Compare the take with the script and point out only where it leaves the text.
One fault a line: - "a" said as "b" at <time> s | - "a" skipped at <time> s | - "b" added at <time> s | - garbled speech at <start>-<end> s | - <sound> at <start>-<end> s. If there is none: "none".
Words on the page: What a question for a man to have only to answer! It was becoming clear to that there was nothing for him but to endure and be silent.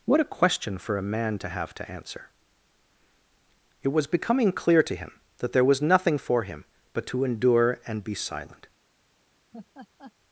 - "only" skipped at 1.8 s
- "him" added at 5.0 s
- laugh at 9.5-10.1 s